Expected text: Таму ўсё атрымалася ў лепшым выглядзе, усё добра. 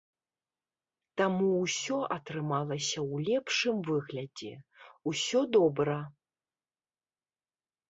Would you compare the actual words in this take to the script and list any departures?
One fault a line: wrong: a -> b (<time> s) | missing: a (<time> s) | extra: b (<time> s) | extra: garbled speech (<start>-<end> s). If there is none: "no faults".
no faults